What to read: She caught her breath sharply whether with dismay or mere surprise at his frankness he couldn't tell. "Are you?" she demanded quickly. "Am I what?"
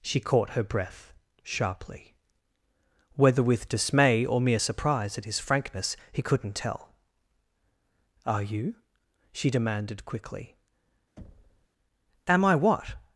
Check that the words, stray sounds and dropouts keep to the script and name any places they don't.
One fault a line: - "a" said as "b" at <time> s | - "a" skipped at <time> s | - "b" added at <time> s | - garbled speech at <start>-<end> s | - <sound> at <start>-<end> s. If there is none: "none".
- thud at 11.2-11.7 s